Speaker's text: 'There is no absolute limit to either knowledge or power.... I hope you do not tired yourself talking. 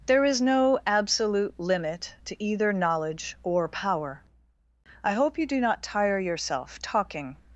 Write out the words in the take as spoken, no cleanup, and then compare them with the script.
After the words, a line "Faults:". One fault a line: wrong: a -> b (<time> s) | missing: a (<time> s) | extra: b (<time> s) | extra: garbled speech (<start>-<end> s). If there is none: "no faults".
'There is no absolute limit to either knowledge or power.... I hope you do not tire yourself talking.
Faults:
wrong: tired -> tire (5.8 s)